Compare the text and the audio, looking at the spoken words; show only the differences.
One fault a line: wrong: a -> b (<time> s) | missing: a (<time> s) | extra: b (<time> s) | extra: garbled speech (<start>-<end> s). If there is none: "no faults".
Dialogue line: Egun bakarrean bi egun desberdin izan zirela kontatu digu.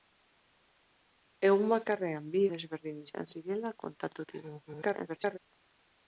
missing: egun (2.4 s)
extra: garbled speech (4.7-5.4 s)